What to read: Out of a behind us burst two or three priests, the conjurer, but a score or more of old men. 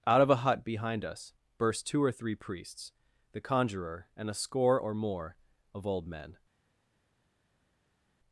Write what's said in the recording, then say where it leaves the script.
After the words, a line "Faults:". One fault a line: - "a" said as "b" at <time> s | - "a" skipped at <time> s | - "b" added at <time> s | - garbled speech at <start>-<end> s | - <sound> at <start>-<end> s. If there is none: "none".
Out of a hut behind us burst two or three priests, the conjurer, and a score or more of old men.
Faults:
- "hut" added at 0.4 s
- "but" said as "and" at 4.2 s